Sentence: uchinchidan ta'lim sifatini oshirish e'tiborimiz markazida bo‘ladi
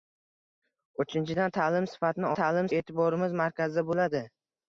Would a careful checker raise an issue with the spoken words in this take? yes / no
yes